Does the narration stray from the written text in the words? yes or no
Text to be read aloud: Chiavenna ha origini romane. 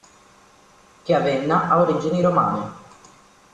no